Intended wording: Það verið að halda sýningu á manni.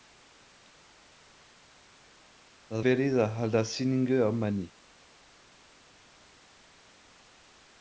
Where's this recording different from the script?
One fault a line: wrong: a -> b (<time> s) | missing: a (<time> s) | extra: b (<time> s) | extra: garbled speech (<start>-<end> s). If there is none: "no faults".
no faults